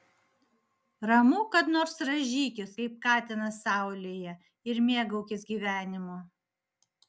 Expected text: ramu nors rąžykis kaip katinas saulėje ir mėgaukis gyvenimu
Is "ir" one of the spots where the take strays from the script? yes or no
no